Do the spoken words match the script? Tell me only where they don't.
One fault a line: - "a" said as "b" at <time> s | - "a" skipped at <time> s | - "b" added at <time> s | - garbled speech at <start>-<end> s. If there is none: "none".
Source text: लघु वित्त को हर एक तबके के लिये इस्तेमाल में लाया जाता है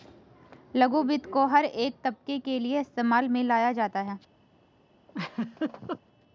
none